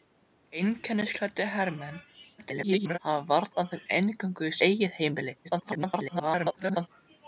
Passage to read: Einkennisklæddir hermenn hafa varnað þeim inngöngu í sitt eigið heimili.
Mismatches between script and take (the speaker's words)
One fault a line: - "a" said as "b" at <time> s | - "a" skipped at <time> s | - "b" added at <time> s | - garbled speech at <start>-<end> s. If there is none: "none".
- garbled speech at 2.4-3.0 s
- "sitt" skipped at 4.5 s
- garbled speech at 5.4-6.9 s